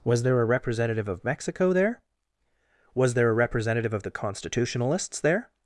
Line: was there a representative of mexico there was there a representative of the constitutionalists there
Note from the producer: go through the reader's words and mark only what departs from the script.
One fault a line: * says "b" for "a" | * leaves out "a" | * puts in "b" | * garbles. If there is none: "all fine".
all fine